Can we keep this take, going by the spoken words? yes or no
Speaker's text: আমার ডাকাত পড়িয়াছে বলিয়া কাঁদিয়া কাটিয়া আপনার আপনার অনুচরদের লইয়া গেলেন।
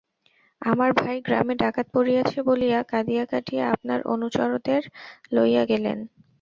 no